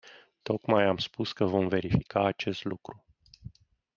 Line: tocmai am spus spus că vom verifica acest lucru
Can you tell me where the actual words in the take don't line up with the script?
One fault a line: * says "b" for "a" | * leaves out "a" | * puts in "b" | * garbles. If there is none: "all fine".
* leaves out "spus"